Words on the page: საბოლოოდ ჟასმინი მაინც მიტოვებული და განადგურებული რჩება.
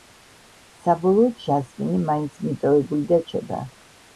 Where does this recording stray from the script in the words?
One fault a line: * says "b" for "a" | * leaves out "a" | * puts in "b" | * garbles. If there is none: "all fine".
* leaves out "განადგურებული"